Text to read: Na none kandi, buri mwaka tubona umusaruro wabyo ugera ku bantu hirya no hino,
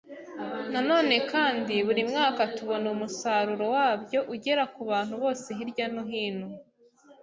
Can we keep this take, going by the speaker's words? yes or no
no